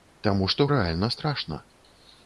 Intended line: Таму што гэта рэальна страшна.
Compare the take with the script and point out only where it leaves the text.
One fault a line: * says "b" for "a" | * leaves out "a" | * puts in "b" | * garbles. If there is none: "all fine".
* leaves out "гэта"